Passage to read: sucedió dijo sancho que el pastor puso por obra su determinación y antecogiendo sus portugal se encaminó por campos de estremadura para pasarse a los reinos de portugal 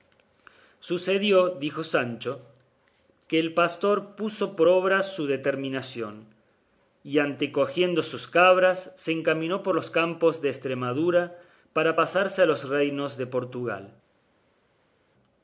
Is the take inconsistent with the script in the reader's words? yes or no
yes